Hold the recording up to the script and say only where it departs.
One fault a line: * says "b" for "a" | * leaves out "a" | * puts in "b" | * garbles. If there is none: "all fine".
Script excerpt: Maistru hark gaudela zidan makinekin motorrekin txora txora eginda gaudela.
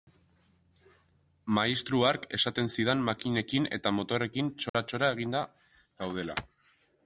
* says "esaten" for "gaudela"
* puts in "eta"